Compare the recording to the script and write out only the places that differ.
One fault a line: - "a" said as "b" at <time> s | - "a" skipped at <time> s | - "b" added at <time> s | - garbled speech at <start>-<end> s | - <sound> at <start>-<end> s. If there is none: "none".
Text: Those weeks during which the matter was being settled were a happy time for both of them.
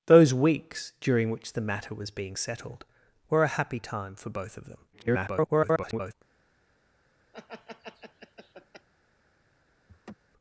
- garbled speech at 4.9-6.1 s
- laugh at 7.3-8.9 s
- laugh at 9.9-10.1 s